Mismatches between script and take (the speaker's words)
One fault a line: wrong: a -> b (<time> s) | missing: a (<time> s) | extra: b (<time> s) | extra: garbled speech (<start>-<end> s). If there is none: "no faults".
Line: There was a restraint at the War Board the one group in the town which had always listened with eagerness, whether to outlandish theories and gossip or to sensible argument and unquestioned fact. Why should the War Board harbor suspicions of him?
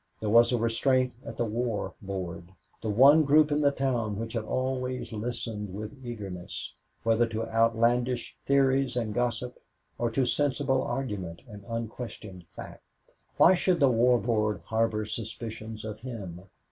no faults